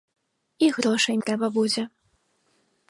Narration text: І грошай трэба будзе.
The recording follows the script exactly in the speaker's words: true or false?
true